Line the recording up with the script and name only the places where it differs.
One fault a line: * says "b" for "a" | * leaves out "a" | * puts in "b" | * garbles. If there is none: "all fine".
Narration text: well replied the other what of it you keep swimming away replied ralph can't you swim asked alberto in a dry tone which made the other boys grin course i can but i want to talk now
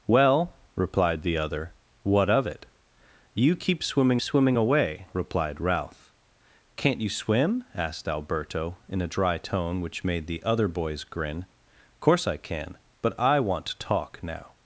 * puts in "swimming"